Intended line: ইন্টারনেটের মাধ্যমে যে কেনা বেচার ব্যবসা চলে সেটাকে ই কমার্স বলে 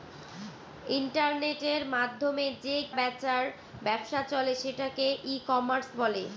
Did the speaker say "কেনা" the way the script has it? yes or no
no